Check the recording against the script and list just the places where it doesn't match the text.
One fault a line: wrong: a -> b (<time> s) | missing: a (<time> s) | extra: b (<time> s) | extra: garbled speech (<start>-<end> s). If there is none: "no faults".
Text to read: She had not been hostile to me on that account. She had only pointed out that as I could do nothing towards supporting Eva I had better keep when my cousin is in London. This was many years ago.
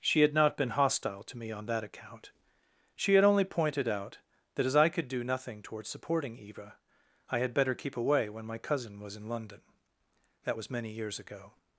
extra: away (8.0 s)
wrong: is -> was (9.0 s)
wrong: This -> That (10.4 s)